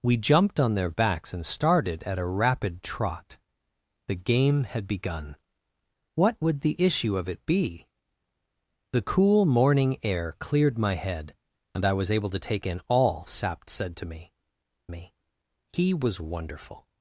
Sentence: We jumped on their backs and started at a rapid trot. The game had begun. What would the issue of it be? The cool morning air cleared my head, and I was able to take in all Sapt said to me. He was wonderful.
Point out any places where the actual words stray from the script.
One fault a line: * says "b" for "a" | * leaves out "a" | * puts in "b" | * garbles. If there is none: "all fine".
* puts in "me"